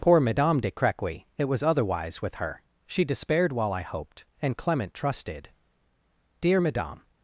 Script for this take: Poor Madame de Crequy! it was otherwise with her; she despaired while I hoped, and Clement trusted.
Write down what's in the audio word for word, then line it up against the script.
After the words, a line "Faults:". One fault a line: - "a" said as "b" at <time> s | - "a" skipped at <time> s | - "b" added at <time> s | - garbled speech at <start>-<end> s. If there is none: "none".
Poor Madame de Crequy! it was otherwise with her; she despaired while I hoped, and Clement trusted. "'Dear Madame
Faults:
- "Dear Madame" added at 6.4 s